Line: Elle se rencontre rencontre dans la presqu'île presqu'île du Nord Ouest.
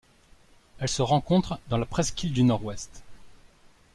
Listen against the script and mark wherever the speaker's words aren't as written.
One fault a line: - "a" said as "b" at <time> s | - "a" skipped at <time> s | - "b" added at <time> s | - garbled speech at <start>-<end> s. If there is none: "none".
- "rencontre" skipped at 1.6 s
- "presqu'île" skipped at 2.3 s